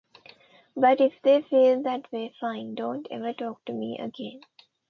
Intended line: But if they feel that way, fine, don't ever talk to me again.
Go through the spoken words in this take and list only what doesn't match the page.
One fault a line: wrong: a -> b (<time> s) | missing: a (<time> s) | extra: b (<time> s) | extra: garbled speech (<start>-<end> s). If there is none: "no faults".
no faults